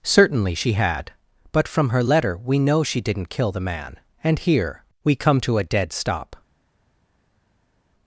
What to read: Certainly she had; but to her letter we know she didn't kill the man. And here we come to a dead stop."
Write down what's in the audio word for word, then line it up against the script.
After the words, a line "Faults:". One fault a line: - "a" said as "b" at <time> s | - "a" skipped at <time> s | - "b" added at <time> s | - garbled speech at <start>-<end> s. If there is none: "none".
Certainly she had; but from her letter we know she didn't kill the man. And here we come to a dead stop."
Faults:
- "to" said as "from" at 1.7 s